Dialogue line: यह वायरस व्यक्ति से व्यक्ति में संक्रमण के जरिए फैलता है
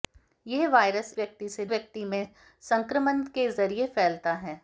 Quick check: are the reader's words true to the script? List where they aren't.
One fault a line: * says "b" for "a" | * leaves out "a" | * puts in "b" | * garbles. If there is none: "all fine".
all fine